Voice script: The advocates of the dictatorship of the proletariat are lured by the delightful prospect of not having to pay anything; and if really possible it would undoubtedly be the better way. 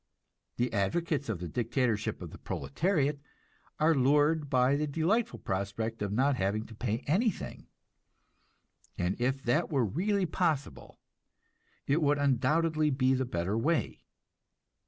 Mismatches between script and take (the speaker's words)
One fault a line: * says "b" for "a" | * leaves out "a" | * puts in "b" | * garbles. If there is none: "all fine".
* puts in "that were"